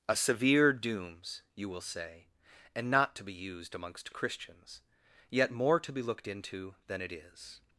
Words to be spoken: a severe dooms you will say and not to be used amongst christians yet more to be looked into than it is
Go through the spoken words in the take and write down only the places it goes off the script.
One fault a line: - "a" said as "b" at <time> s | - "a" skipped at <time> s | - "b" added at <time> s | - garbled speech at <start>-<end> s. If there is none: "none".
none